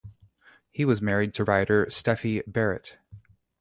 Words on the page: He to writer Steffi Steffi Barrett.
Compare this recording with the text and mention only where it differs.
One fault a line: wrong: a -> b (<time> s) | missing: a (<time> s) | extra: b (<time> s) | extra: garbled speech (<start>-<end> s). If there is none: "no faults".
extra: was married (0.8 s)
missing: Steffi (2.4 s)